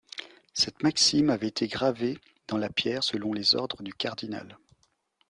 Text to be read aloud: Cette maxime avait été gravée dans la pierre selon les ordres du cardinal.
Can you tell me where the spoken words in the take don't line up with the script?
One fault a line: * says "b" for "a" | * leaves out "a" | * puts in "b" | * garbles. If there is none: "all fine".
all fine